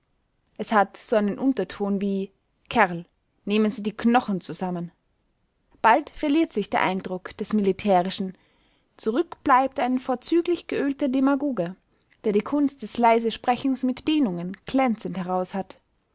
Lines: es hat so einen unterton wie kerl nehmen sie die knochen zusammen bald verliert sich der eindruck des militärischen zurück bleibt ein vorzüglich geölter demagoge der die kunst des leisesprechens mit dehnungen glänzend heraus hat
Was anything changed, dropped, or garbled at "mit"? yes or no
no